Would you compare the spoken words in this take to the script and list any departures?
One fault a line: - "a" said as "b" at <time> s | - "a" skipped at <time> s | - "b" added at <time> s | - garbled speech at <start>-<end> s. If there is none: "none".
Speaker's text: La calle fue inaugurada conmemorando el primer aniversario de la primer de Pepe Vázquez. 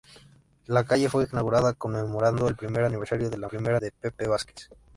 none